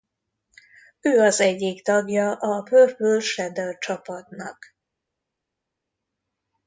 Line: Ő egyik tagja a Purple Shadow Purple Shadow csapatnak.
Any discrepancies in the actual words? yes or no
yes